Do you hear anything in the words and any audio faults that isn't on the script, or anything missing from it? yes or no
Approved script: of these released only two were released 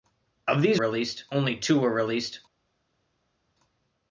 no